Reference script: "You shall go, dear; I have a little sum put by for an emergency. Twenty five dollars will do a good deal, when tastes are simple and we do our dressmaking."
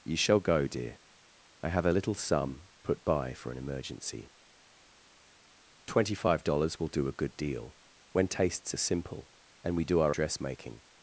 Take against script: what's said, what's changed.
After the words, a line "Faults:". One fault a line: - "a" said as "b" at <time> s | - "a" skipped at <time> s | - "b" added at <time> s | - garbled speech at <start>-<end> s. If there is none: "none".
"You shall go, dear; I have a little sum put by for an emergency. Twenty five dollars will do a good deal, when tastes are simple and we do our dressmaking."
Faults:
none